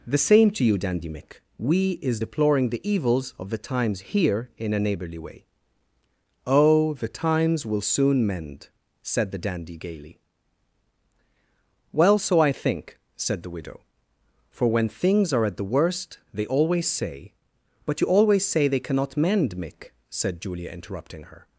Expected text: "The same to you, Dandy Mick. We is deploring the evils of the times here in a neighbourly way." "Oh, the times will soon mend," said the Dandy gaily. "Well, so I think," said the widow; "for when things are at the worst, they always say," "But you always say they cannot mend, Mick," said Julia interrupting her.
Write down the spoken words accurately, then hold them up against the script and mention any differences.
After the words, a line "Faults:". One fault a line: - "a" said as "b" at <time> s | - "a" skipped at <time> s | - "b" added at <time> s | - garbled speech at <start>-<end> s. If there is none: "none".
"The same to you, Dandy Mick. We is deploring the evils of the times here in a neighbourly way." "Oh, the times will soon mend," said the Dandy gaily. "Well, so I think," said the widow; "for when things are at the worst, they always say," "But you always say they cannot mend, Mick," said Julia interrupting her.
Faults:
none